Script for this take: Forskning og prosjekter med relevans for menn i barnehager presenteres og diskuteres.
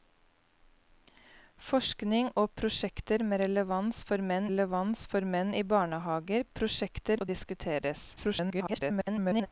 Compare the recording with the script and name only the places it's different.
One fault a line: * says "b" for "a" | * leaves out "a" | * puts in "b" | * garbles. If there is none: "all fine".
* puts in "relevans for menn"
* says "prosjekter" for "presenteres"
* garbles